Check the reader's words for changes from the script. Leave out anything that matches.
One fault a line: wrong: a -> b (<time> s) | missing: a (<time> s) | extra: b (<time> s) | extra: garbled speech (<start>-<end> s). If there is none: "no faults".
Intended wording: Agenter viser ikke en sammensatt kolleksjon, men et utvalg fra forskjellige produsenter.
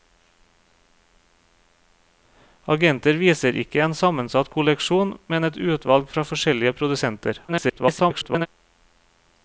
extra: garbled speech (7.5-8.5 s)